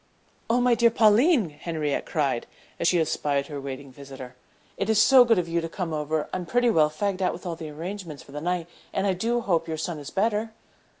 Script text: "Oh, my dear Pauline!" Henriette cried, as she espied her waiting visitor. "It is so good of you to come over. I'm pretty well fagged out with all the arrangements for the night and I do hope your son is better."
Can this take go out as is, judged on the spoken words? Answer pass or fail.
pass